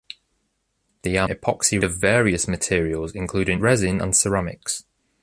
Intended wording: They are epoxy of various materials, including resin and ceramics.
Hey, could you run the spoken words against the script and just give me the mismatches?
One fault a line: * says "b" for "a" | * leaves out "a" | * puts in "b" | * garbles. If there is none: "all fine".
all fine